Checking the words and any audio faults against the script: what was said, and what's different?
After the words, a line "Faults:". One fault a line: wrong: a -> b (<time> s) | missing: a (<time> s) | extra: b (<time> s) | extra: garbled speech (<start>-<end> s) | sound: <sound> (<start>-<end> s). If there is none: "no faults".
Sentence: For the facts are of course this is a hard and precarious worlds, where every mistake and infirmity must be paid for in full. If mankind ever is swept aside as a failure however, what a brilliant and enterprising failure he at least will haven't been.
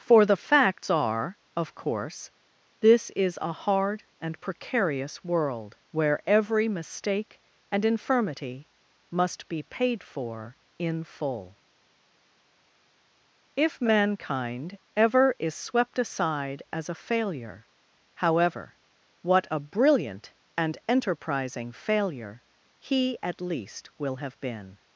For the facts are of course this is a hard and precarious world, where every mistake and infirmity must be paid for in full. If mankind ever is swept aside as a failure however, what a brilliant and enterprising failure he at least will have been.
Faults:
wrong: worlds -> world (5.2 s)
wrong: haven't -> have (24.2 s)